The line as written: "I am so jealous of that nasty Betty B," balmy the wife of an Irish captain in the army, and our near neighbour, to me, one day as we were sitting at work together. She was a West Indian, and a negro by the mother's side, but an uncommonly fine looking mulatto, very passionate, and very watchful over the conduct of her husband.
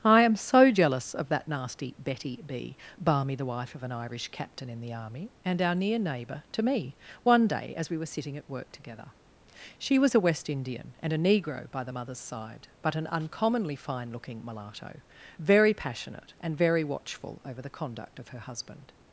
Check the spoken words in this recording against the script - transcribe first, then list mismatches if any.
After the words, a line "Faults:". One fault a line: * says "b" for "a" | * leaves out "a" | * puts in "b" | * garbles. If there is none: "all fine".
"I am so jealous of that nasty Betty B," balmy the wife of an Irish captain in the army, and our near neighbour, to me, one day as we were sitting at work together. She was a West Indian, and a negro by the mother's side, but an uncommonly fine looking mulatto, very passionate, and very watchful over the conduct of her husband.
Faults:
all fine